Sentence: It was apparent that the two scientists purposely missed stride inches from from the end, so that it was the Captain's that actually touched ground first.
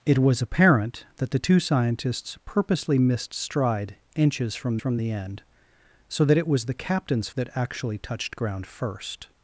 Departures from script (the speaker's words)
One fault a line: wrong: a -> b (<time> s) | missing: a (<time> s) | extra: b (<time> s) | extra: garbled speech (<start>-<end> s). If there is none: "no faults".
no faults